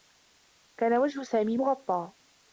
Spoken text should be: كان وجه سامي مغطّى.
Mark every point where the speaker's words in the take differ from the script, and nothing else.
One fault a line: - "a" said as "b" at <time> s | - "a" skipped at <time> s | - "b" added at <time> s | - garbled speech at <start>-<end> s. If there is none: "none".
none